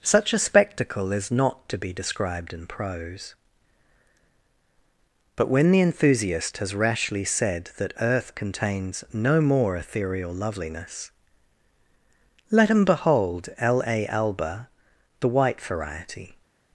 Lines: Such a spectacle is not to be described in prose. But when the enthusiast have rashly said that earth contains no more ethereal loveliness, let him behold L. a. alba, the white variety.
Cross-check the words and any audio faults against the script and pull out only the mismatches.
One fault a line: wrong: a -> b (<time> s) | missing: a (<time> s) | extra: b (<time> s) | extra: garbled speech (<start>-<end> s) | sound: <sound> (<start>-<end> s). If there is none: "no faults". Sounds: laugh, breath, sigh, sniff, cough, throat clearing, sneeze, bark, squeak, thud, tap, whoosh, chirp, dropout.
wrong: have -> has (6.6 s)